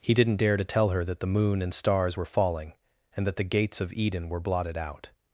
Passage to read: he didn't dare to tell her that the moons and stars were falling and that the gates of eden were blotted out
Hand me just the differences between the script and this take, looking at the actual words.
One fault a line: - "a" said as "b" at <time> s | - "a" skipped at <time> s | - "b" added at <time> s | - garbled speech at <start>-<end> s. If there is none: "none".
- "moons" said as "moon" at 1.3 s